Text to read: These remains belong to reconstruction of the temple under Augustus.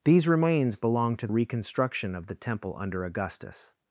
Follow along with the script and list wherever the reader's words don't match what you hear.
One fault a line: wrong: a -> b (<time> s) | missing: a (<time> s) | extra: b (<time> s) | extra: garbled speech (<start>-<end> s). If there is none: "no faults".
no faults